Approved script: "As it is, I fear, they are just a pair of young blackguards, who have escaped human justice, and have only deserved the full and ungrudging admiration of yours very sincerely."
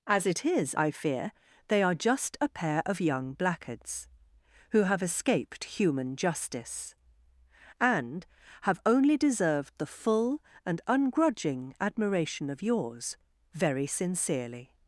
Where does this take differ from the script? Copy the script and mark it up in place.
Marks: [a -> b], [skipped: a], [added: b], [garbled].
"As it is, I fear, they are just a pair of young blackguards, who have escaped human justice, and have only deserved the full and ungrudging admiration of yours very sincerely."